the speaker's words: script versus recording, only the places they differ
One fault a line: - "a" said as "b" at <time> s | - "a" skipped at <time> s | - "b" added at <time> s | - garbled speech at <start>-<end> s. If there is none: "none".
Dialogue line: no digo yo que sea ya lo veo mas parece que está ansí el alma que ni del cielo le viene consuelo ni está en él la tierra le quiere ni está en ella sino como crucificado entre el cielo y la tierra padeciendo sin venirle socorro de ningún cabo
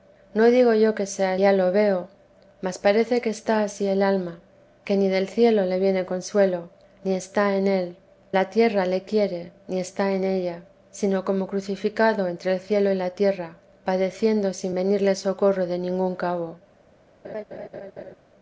none